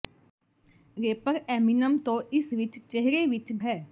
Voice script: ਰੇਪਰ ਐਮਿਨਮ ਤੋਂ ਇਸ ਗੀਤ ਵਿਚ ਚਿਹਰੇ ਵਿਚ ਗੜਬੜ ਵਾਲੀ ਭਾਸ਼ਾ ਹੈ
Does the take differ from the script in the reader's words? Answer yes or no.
yes